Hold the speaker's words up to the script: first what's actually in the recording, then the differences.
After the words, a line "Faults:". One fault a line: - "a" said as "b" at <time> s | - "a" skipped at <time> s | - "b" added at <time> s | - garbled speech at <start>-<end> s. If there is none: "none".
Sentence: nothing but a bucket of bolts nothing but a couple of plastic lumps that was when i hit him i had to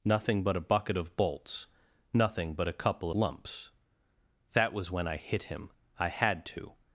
nothing but a bucket of bolts nothing but a couple lumps that was when i hit him i had to
Faults:
- "of plastic" skipped at 3.1 s